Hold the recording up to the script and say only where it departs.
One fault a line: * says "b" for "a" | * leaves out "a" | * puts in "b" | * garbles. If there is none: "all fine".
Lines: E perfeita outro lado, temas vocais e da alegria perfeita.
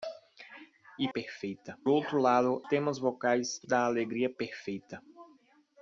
all fine